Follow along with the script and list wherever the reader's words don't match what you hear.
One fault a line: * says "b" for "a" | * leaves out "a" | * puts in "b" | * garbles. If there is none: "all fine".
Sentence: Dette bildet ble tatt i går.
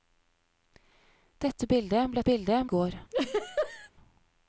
* says "bildet" for "tatt"